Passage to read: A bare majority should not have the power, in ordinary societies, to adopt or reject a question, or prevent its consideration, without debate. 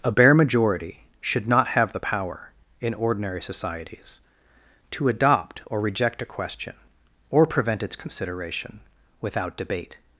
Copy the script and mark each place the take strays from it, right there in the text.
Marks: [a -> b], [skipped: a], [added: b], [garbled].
A bare majority should not have the power, in ordinary societies, to adopt or reject a question, or prevent its consideration, without debate.